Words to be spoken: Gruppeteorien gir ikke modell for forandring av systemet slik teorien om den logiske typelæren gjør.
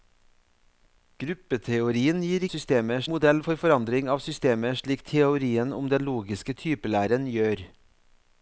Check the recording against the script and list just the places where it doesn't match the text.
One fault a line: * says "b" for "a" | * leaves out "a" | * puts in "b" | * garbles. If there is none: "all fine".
* says "systemet" for "ikke"